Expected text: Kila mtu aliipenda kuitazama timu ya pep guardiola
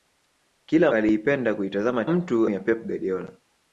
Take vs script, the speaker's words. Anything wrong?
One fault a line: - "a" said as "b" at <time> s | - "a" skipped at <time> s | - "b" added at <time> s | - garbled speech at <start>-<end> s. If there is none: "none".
- "mtu" skipped at 0.9 s
- "timu" said as "mtu" at 2.1 s